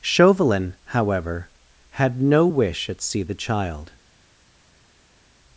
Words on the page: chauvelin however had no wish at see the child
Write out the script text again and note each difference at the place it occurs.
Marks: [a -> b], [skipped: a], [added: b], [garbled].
chauvelin however had no wish at see the child